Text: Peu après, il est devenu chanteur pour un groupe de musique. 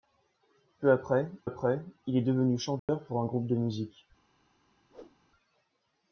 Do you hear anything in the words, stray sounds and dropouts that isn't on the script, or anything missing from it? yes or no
yes